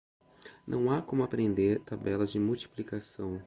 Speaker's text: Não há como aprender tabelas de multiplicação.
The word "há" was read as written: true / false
true